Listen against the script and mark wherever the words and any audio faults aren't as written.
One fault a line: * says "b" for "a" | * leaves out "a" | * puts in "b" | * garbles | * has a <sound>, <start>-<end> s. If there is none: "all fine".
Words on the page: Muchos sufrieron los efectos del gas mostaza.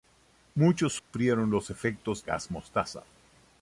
* has a dropout, 1.0-1.1 s
* leaves out "del"